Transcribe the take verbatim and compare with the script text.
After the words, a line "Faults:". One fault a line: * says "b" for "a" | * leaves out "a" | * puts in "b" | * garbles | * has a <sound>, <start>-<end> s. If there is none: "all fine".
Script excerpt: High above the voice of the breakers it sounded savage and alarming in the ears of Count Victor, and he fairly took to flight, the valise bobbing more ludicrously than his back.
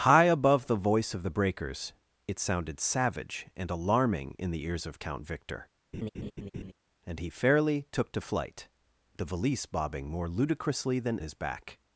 High above the voice of the breakers it sounded savage and alarming in the ears of Count Victor, and he fairly took to flight, the valise bobbing more ludicrously than his back.
Faults:
* has a laugh, 5.9-6.7 s